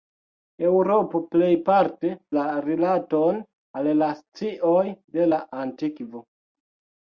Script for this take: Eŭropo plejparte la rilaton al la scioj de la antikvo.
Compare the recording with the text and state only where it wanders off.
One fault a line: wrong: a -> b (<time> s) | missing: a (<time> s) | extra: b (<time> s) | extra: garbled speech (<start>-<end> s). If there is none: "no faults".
no faults